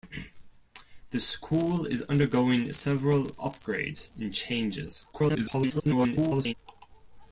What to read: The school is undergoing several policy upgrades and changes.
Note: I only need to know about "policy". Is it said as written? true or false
false